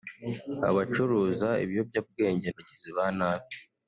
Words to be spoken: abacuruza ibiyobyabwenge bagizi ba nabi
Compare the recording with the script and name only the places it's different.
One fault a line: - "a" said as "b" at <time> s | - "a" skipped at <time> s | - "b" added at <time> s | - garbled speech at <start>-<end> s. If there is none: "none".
none